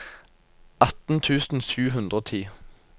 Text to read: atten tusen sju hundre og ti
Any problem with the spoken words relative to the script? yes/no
no